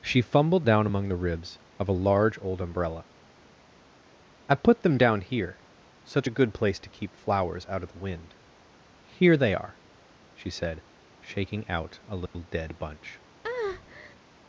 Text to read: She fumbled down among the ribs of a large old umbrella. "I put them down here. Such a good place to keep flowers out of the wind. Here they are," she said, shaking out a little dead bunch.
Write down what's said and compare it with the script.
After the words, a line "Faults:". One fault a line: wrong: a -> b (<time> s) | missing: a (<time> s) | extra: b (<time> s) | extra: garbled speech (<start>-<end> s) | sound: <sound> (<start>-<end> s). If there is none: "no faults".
She fumbled down among the ribs of a large old umbrella. "I put them down here. Such a good place to keep flowers out of the wind. Here they are," she said, shaking out a little dead bunch.
Faults:
sound: dropout (12.3-12.3 s)
sound: breath (13.4-14.2 s)